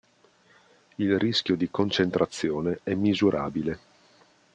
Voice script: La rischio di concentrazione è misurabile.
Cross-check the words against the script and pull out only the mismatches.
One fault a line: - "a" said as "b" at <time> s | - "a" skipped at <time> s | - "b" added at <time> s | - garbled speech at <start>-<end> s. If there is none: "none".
- "La" said as "Il" at 0.9 s